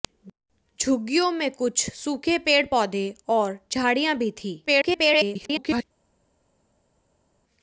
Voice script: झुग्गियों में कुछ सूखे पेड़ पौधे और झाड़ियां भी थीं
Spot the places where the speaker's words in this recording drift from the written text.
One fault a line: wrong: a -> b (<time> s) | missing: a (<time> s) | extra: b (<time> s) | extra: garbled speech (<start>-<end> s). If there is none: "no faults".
extra: garbled speech (4.7-5.8 s)